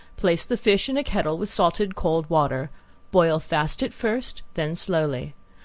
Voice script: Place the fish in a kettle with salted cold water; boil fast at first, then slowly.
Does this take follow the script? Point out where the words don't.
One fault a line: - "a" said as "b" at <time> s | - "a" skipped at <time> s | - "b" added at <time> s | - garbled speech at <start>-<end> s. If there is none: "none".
none